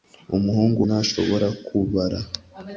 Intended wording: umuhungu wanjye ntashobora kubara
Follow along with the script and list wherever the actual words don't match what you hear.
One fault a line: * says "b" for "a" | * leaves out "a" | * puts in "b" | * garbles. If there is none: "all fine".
* leaves out "wanjye"